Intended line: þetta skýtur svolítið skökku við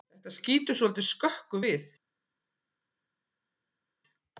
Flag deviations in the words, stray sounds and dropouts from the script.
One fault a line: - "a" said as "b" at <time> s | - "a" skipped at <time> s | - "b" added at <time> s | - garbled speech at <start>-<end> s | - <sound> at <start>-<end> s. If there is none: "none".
none